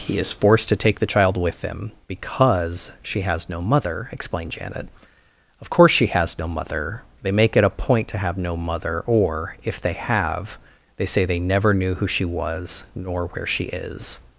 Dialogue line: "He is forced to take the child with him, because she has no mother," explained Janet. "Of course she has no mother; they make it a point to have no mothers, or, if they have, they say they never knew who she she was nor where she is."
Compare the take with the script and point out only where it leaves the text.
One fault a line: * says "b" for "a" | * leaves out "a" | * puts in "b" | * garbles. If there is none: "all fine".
* says "mother" for "mothers"
* leaves out "she"